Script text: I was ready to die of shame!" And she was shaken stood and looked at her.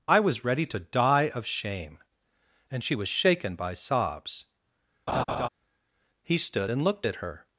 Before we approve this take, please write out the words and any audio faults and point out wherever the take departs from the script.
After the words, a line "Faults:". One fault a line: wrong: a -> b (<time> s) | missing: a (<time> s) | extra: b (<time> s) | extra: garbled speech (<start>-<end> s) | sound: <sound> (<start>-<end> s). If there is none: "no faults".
I was ready to die of shame!" And she was shaken by sobs. He stood and looked at her.
Faults:
extra: by sobs He (3.6 s)
sound: laugh (5.1-5.5 s)